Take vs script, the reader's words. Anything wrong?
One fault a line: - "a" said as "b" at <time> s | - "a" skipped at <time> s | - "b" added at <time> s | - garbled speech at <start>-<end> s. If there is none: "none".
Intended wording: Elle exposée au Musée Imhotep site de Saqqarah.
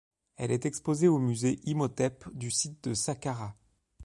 - "est" added at 0.5 s
- "du" added at 2.3 s